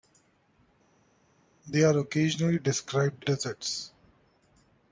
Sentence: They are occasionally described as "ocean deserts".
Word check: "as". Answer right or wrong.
wrong